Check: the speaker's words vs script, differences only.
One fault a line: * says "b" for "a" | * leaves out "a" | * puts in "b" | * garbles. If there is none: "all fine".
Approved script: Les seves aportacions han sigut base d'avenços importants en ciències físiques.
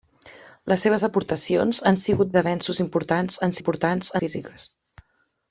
* leaves out "base"
* says "importants" for "ciències"